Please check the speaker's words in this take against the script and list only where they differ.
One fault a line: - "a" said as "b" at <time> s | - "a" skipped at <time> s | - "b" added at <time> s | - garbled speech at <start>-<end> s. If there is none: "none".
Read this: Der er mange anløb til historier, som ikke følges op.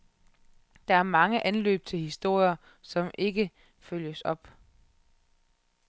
none